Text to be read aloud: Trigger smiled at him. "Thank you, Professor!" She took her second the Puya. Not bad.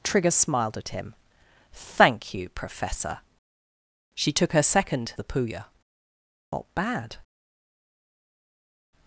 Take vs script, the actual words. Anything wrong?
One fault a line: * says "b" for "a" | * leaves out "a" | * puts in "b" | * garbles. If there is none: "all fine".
all fine